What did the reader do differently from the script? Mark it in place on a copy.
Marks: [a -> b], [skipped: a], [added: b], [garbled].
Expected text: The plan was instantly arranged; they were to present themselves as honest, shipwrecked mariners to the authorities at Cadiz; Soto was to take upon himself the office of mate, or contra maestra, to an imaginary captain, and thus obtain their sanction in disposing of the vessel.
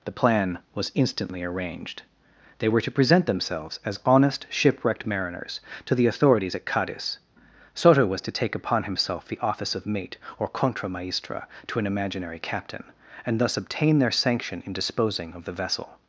The plan was instantly arranged; they were to present themselves as honest, shipwrecked mariners to the authorities at Cadiz; Soto was to take upon himself the office of mate, or contra maestra, to an imaginary captain, and thus obtain their sanction in disposing of the vessel.